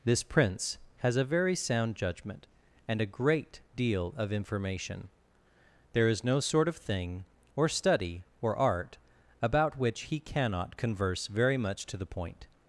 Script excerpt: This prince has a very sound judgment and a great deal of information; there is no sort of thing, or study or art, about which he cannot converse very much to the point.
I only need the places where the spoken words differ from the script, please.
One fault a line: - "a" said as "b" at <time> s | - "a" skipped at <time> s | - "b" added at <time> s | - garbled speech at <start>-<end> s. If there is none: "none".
none